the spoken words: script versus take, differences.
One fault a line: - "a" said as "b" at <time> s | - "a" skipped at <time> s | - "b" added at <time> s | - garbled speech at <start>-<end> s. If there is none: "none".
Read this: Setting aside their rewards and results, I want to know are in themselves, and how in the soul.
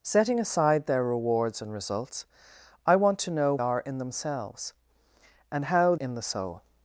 none